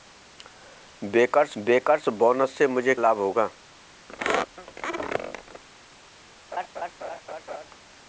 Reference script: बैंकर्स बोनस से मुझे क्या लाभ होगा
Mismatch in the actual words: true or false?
true